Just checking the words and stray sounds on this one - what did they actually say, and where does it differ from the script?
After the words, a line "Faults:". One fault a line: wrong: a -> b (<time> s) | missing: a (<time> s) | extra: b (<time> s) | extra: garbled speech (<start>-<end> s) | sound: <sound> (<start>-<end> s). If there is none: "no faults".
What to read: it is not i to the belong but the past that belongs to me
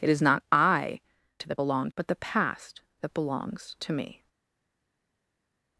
it is not i to the belong but the past that belongs to me
Faults:
no faults